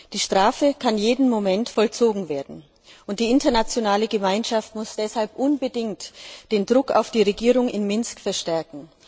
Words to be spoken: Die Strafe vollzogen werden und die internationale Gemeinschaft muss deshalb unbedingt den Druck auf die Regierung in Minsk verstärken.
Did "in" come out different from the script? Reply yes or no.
no